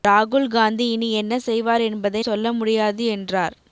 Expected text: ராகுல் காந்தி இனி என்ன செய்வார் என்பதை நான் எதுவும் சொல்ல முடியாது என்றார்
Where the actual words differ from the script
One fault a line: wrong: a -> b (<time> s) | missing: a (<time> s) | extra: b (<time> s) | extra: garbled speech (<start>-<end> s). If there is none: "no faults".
missing: நான் எதுவும் (2.2 s)